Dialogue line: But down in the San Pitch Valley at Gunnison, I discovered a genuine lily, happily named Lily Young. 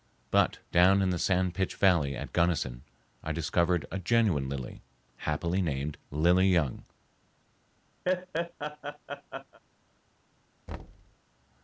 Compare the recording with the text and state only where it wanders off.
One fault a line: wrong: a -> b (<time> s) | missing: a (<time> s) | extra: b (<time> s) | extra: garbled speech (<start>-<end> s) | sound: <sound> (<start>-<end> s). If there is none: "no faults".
sound: laugh (8.1-9.6 s)
sound: thud (10.7-11.2 s)